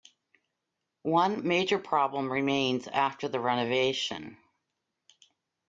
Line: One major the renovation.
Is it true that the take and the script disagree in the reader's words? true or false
true